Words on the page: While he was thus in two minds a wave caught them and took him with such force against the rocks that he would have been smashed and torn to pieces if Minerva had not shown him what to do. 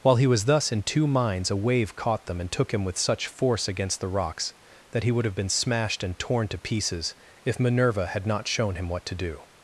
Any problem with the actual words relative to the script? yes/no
no